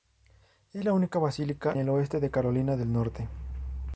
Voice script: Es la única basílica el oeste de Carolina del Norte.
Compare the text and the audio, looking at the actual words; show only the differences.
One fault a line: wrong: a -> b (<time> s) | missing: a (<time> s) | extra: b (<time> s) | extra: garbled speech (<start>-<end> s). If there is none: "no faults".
no faults